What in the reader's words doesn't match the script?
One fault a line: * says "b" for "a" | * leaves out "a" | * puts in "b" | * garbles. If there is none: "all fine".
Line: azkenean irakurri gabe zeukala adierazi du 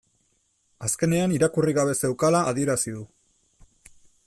all fine